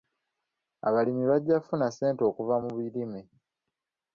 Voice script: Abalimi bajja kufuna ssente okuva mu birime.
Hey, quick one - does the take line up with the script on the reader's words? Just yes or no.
yes